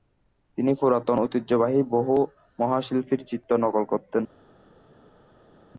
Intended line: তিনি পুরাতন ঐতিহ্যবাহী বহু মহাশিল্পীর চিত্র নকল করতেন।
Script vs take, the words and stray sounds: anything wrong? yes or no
no